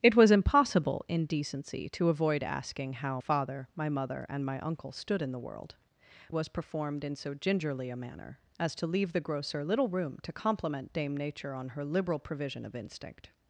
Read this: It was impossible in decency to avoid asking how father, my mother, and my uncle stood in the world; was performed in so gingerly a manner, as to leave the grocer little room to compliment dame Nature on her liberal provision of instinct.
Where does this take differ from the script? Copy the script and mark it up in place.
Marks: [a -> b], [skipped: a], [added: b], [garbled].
It was impossible in decency to avoid asking how father, my mother, and my uncle stood in the world; was performed in so gingerly a manner, as to leave the grocer little room to compliment dame Nature on her liberal provision of instinct.